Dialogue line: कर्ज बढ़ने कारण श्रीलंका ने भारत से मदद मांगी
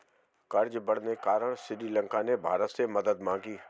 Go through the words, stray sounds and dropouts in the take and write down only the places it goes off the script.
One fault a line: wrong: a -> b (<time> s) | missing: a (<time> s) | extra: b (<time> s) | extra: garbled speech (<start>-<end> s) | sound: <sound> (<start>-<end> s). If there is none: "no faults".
no faults